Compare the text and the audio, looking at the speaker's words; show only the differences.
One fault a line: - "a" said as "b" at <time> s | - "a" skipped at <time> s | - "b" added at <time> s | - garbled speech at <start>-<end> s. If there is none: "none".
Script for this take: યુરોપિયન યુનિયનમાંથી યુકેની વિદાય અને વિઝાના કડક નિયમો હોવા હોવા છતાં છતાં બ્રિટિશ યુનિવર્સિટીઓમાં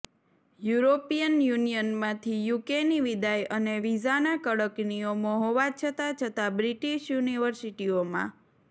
- "હોવા" skipped at 5.7 s